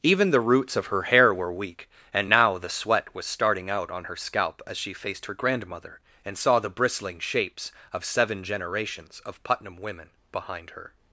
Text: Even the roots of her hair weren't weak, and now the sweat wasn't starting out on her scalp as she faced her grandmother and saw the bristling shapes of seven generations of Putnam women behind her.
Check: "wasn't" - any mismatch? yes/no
yes